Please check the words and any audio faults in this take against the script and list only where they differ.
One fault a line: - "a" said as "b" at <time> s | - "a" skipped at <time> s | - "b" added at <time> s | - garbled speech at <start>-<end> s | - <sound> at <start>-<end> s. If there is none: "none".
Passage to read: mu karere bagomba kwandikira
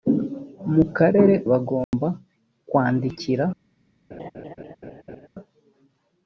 - dropout at 1.8-1.9 s
- laugh at 4.1-5.3 s